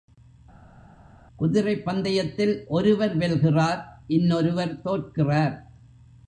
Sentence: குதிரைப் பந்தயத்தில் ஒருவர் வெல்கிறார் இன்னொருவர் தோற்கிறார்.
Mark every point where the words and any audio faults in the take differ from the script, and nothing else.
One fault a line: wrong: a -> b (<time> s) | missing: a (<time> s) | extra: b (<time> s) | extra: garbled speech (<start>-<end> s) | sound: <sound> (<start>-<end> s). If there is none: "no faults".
no faults